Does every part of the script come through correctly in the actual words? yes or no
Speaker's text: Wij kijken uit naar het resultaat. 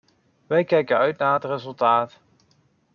yes